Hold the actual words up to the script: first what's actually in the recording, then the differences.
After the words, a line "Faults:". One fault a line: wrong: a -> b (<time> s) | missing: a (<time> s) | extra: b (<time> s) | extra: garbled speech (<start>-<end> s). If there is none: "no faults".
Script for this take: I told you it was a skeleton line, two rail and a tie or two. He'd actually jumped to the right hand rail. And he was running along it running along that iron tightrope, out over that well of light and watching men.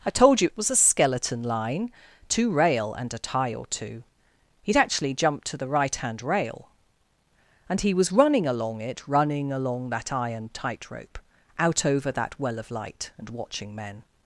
I told you it was a skeleton line, two rail and a tie or two. He'd actually jumped to the right hand rail. And he was running along it running along that iron tightrope, out over that well of light and watching men.
Faults:
no faults